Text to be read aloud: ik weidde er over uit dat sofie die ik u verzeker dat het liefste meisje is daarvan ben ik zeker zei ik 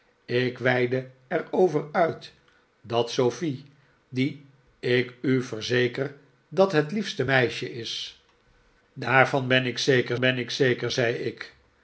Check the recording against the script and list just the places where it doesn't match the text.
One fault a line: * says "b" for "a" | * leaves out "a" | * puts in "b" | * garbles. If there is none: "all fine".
* puts in "ben ik zeker"